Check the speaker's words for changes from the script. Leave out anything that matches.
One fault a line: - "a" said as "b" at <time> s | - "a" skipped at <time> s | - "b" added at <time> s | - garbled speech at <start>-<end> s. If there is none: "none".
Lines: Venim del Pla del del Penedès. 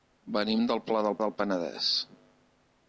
none